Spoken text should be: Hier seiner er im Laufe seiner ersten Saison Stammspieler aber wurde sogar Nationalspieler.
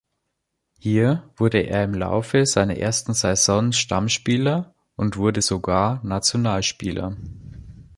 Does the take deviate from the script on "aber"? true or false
true